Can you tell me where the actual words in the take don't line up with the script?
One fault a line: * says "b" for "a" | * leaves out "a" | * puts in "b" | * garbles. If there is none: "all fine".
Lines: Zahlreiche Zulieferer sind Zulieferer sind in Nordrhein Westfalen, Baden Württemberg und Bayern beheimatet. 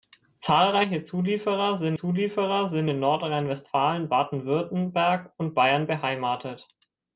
all fine